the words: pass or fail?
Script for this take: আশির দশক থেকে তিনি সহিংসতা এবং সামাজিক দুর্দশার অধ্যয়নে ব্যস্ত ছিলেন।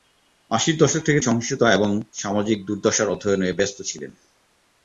fail